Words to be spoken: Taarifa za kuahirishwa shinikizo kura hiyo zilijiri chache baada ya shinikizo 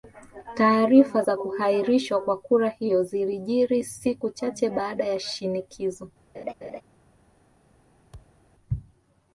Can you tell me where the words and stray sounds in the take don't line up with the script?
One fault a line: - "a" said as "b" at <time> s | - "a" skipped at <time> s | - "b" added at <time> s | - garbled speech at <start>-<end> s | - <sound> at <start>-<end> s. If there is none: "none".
- "shinikizo" said as "kwa" at 2.2 s
- "siku" added at 3.8 s
- laugh at 6.3-6.8 s
- thud at 8.1-8.4 s